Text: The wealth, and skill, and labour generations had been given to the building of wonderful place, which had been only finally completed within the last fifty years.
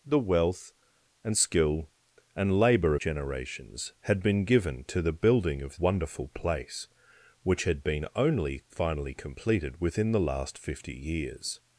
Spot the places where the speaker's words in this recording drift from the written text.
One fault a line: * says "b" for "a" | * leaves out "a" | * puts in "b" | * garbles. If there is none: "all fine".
all fine